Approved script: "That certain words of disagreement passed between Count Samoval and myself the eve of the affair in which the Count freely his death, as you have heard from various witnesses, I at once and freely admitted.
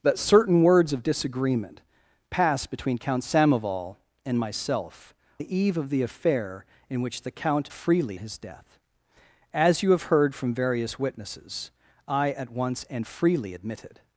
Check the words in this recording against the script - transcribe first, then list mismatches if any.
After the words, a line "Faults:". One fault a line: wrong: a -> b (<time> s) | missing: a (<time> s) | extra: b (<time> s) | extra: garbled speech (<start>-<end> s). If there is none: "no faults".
"That certain words of disagreement passed between Count Samoval and myself the eve of the affair in which the Count freely his death, as you have heard from various witnesses, I at once and freely admitted.
Faults:
no faults